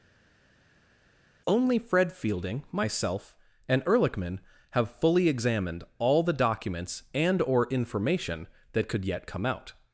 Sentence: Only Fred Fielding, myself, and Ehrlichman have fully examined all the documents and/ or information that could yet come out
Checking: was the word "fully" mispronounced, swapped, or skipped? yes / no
no